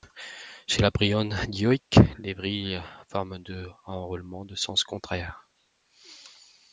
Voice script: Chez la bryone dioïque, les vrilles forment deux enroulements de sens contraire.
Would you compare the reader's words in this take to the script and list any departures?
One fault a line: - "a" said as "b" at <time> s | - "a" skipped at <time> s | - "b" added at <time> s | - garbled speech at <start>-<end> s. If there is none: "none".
none